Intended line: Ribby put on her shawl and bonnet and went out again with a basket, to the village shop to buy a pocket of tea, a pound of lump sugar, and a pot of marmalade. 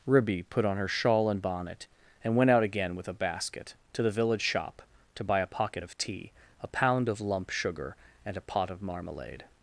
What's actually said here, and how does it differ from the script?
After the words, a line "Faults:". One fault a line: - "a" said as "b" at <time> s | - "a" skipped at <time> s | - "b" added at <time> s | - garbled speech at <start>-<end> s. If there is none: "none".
Ribby put on her shawl and bonnet and went out again with a basket, to the village shop to buy a pocket of tea, a pound of lump sugar, and a pot of marmalade.
Faults:
none